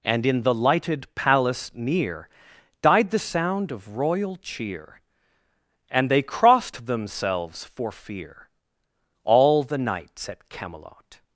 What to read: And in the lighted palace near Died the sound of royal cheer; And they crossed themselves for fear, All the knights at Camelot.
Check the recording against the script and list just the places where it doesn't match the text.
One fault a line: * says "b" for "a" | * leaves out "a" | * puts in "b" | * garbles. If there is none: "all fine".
all fine